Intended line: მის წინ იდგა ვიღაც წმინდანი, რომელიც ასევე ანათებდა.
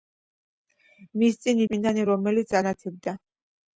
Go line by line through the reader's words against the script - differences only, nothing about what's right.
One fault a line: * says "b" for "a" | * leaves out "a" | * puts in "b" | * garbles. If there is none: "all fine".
* leaves out "იდგა ვიღაც"
* leaves out "ასევე"